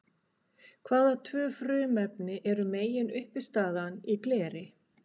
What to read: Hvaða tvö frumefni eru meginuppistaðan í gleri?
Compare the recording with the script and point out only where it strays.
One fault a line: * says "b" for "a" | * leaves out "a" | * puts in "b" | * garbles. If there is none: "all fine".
all fine